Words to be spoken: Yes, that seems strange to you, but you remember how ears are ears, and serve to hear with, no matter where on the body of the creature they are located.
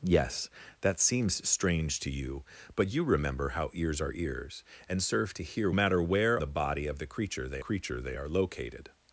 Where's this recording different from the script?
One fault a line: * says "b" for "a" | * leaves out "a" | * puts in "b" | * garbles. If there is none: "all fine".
* leaves out "with no"
* leaves out "on"
* puts in "creature they"